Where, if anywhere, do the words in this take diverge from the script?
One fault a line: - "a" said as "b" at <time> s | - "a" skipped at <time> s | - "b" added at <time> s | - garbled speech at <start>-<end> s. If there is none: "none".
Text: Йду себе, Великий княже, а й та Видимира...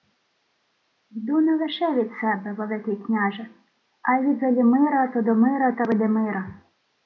- "не лише від" added at 1.4 s
- "від Велімира Тодомира" added at 4.2 s